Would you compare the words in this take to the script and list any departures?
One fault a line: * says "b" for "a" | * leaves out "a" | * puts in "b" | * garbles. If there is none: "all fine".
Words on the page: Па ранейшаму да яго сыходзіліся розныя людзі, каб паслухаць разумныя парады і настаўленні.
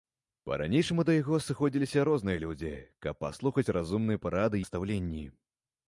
* leaves out "і"